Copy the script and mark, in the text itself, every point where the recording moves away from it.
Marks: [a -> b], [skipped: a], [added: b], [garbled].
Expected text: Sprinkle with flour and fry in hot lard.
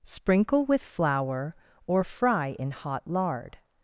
Sprinkle with flour [and -> or] fry in hot lard.